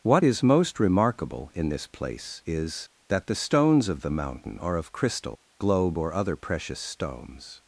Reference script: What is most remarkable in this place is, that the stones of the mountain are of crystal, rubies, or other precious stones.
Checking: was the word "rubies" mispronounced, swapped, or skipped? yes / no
yes